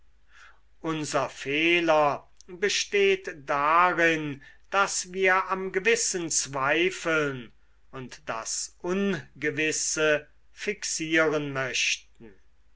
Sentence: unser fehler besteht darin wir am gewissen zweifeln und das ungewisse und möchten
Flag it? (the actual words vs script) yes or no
yes